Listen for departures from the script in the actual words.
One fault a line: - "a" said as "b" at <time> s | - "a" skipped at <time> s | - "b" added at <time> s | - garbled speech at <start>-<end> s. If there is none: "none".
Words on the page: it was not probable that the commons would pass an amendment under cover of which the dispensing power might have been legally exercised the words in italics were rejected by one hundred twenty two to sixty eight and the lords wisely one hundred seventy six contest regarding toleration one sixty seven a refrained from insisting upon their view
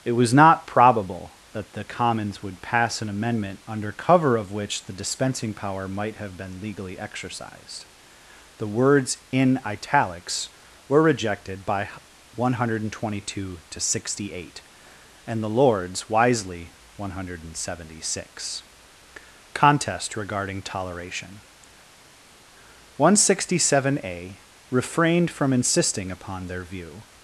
none